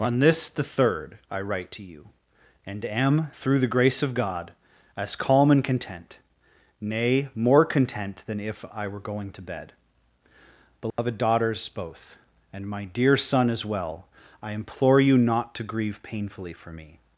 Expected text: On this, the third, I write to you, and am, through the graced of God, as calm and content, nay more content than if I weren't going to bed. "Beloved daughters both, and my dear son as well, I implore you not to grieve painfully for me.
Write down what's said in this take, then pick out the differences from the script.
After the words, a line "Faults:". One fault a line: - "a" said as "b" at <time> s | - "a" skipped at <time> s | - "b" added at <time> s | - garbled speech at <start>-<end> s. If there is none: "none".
On this, the third, I write to you, and am, through the grace of God, as calm and content, nay more content than if I were going to bed. "Beloved daughters both, and my dear son as well, I implore you not to grieve painfully for me.
Faults:
- "graced" said as "grace" at 3.7 s
- "weren't" said as "were" at 8.9 s